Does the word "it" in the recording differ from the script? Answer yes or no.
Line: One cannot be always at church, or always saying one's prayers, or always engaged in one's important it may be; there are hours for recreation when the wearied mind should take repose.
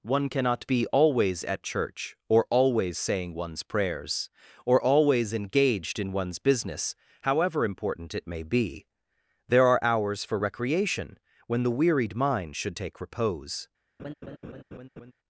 no